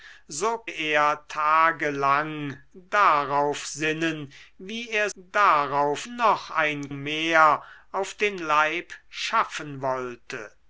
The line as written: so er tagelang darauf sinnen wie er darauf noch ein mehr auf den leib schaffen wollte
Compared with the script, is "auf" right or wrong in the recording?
right